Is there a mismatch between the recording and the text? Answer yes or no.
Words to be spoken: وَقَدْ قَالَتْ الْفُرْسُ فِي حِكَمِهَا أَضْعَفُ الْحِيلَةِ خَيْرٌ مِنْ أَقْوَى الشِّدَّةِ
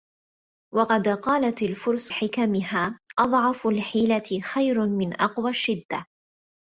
yes